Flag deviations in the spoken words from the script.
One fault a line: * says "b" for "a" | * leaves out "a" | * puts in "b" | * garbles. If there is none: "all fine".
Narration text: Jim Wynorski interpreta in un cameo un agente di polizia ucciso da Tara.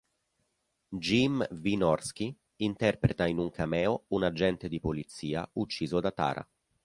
all fine